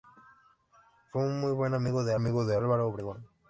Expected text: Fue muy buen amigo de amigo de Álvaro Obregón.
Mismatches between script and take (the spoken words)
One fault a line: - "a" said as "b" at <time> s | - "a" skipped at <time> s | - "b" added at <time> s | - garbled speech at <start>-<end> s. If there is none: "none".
none